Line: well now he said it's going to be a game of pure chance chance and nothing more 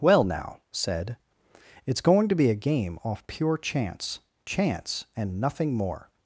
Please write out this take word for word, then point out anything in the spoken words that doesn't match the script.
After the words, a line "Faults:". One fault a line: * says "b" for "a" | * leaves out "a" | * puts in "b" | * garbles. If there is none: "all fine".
well now said it's going to be a game off pure chance chance and nothing more
Faults:
* leaves out "he"
* says "off" for "of"